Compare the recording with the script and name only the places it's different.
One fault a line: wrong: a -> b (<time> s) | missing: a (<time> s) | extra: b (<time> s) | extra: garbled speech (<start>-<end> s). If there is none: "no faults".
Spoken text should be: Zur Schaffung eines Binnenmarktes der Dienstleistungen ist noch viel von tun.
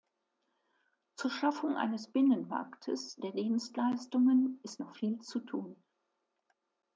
wrong: von -> zu (5.2 s)